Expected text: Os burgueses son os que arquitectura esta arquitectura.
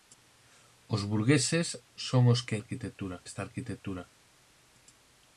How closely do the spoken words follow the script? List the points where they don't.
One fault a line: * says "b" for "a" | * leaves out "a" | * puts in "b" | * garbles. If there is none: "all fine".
all fine